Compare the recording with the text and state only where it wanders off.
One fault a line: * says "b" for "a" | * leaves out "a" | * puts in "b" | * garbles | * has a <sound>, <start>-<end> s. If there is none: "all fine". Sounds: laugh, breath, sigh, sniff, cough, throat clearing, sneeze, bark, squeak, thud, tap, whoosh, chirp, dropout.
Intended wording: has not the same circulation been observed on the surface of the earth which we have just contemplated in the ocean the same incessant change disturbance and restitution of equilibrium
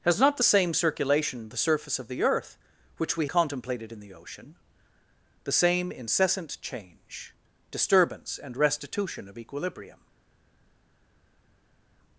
* leaves out "been observed on"
* leaves out "have just"